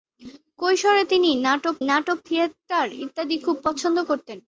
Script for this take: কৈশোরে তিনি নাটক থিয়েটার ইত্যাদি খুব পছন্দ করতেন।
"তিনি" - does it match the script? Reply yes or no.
yes